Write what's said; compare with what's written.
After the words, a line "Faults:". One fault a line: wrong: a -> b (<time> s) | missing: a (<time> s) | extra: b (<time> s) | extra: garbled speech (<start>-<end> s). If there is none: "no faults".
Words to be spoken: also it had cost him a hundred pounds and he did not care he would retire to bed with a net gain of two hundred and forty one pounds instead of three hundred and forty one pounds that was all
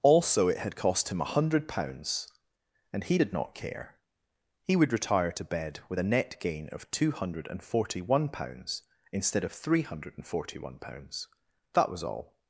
also it had cost him a hundred pounds and he did not care he would retire to bed with a net gain of two hundred and forty one pounds instead of three hundred and forty one pounds that was all
Faults:
no faults